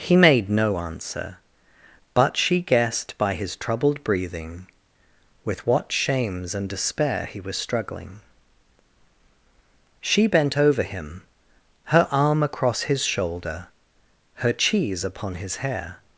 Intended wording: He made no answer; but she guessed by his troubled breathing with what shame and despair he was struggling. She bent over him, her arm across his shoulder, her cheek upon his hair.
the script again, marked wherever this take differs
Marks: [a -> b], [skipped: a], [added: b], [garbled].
He made no answer; but she guessed by his troubled breathing with what [shame -> shames] and despair he was struggling. She bent over him, her arm across his shoulder, her [cheek -> cheese] upon his hair.